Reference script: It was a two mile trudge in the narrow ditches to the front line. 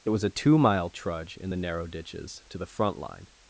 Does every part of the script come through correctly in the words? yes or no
yes